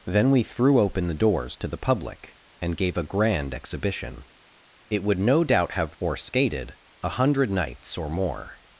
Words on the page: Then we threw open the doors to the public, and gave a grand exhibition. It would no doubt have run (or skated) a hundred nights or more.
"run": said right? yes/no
no